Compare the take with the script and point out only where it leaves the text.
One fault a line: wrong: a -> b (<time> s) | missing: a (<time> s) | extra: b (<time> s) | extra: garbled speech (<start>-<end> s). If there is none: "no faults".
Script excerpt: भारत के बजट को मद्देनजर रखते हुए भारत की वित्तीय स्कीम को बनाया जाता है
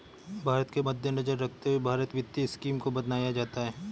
missing: बजट को (0.8 s)
missing: की (2.1 s)